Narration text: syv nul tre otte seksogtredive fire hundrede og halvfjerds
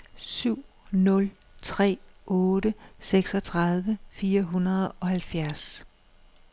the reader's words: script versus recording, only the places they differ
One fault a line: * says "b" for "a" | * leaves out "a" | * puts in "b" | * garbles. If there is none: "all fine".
all fine